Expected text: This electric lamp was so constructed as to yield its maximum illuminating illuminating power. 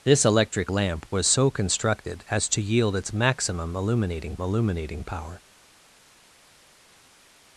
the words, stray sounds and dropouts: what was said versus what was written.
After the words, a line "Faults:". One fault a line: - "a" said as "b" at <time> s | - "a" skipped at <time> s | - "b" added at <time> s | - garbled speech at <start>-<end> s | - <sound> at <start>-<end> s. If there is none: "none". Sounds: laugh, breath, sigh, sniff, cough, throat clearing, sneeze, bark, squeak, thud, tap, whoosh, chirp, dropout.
This electric lamp was so constructed as to yield its maximum illuminating illuminating power.
Faults:
none